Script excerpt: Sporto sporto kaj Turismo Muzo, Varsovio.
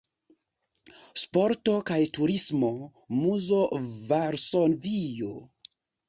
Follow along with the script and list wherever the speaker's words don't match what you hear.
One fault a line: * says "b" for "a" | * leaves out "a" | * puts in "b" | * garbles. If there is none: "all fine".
* leaves out "sporto"